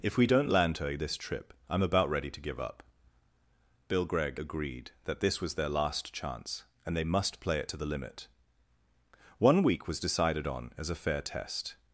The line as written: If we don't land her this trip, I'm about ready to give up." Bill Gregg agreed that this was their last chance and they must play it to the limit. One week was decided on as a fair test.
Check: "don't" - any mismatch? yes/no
no